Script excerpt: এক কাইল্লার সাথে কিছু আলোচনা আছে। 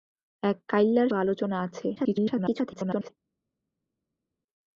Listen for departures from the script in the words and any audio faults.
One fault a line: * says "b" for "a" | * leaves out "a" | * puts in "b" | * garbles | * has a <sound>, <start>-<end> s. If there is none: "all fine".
* leaves out "সাথে কিছু"
* garbles